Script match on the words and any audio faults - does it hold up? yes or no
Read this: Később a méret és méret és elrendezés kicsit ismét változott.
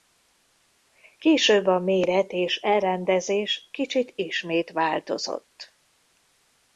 no